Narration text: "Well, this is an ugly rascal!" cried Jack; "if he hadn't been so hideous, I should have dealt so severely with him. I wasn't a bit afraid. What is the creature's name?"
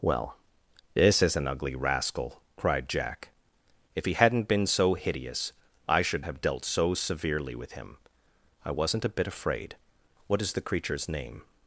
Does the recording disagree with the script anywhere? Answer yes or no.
no